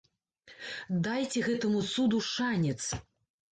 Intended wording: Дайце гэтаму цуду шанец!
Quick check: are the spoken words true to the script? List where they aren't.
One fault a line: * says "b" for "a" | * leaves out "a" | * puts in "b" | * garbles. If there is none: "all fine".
all fine